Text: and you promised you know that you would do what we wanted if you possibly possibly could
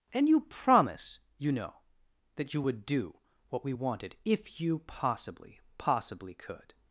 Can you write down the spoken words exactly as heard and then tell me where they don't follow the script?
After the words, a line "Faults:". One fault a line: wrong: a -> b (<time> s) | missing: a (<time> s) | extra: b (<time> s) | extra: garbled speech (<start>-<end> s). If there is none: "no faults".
and you promise you know that you would do what we wanted if you possibly possibly could
Faults:
wrong: promised -> promise (0.4 s)